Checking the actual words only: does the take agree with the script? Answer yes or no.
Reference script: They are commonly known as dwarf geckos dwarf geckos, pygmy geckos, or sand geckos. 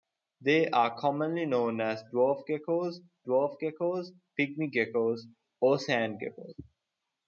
yes